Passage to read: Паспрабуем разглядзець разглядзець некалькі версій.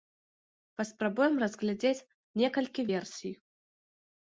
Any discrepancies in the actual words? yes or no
yes